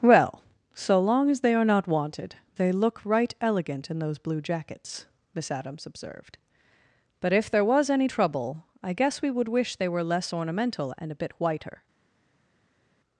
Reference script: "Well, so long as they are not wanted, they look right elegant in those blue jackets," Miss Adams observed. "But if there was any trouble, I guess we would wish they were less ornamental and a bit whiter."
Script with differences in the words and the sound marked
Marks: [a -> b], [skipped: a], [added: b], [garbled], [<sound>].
"Well, so long as they are not wanted, they look right elegant in those blue jackets," Miss Adams observed. "But if there was any trouble, I guess we would wish they were less ornamental and a bit whiter."